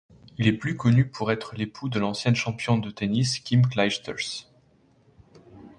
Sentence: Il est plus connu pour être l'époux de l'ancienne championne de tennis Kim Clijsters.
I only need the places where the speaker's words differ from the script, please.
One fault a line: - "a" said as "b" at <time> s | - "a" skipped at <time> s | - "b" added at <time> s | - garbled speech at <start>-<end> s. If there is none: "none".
none